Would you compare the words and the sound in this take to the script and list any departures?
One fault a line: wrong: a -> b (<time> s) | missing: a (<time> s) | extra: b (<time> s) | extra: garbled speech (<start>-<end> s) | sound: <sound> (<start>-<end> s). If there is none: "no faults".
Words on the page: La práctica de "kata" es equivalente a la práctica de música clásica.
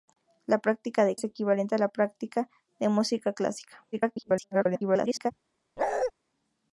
missing: kata (1.1 s)
extra: garbled speech (3.9-5.3 s)
sound: bark (5.8-6.1 s)